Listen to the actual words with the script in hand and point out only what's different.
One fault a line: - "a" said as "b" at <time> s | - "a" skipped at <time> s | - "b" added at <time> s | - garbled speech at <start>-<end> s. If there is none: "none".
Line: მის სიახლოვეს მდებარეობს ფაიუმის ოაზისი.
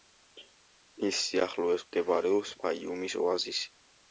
none